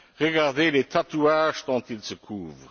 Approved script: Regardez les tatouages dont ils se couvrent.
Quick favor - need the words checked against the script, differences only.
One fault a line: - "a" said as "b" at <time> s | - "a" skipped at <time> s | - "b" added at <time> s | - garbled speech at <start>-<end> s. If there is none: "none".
none